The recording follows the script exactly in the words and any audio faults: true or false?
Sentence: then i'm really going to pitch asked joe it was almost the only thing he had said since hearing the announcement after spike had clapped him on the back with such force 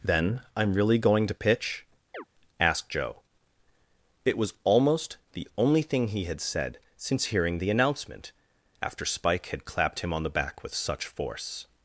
false